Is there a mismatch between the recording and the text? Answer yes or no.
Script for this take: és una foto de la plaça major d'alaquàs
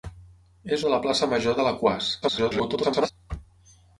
yes